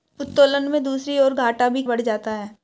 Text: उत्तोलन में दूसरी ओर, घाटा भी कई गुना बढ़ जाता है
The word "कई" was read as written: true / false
false